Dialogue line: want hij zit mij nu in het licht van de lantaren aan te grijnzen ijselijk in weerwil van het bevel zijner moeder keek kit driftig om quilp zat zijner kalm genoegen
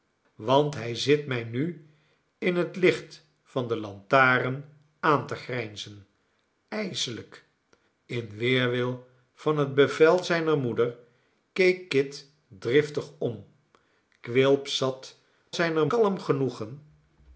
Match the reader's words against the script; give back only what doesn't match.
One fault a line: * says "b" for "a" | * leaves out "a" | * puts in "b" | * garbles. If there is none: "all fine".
all fine